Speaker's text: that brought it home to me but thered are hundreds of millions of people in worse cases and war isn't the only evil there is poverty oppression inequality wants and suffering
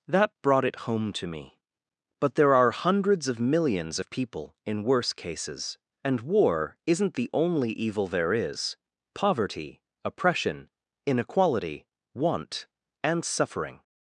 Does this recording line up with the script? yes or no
no